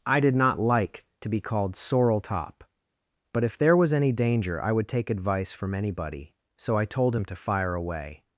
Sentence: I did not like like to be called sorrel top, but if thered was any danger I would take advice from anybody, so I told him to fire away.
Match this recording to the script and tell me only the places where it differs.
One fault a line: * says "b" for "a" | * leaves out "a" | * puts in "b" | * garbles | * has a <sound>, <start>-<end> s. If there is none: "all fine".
* leaves out "like"
* says "there" for "thered"